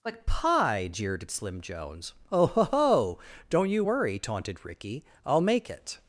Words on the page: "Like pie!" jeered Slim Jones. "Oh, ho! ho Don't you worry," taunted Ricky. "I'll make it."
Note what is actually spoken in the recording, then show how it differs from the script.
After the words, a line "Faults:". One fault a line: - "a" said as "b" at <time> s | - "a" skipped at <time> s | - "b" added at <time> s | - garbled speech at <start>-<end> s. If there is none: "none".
"Like pie!" jeered Slim Jones. "Oh, ho! ho Don't you worry," taunted Ricky. "I'll make it."
Faults:
none